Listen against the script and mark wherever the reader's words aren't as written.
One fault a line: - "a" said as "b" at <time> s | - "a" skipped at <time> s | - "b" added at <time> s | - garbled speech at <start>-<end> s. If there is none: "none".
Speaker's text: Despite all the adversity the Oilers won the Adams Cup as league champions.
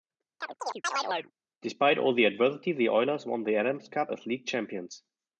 none